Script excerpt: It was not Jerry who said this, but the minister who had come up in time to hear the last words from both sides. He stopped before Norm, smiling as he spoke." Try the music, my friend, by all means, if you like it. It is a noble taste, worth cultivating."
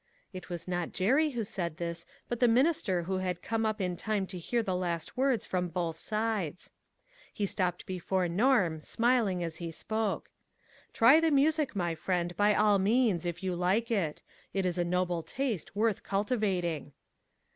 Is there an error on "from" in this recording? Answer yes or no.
no